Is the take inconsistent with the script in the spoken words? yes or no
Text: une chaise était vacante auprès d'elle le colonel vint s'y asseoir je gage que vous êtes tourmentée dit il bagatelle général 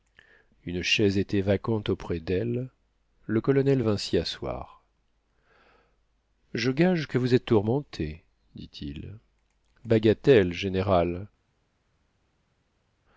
no